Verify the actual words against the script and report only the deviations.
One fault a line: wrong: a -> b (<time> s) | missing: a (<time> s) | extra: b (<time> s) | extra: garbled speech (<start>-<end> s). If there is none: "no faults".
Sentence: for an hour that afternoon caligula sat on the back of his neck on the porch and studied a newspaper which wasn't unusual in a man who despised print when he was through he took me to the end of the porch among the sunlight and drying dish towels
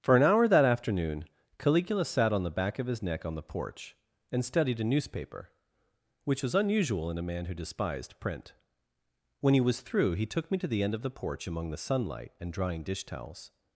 wrong: wasn't -> was (6.4 s)